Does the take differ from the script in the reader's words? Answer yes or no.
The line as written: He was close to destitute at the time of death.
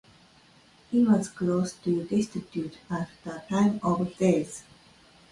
no